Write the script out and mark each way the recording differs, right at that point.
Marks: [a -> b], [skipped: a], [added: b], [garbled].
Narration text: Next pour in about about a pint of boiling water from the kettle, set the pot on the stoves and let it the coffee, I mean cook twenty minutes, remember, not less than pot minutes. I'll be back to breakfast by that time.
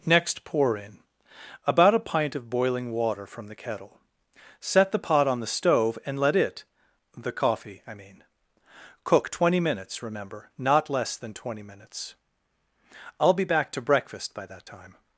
Next pour in about [skipped: about] a pint of boiling water from the kettle, set the pot on the [stoves -> stove] and let it the coffee, I mean cook twenty minutes, remember, not less than [pot -> twenty] minutes. I'll be back to breakfast by that time.